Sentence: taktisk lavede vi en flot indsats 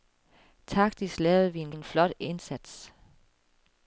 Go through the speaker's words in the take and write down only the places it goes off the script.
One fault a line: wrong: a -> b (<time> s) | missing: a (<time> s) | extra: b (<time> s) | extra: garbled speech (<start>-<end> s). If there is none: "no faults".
extra: en (1.7 s)